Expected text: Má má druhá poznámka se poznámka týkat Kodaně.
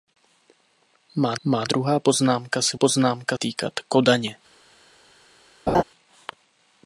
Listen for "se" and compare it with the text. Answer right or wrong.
right